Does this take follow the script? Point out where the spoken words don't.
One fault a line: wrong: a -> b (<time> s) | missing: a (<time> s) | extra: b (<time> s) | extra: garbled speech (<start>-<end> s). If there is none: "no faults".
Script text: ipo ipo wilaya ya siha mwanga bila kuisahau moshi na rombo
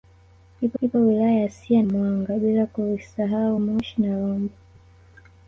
no faults